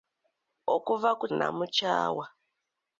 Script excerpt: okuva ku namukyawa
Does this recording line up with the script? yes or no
yes